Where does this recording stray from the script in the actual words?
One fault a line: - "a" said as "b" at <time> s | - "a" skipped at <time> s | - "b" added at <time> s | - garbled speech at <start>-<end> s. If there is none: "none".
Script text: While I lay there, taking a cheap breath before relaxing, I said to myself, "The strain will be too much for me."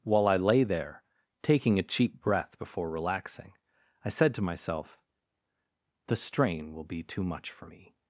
none